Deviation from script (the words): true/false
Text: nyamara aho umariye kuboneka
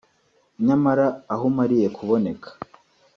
false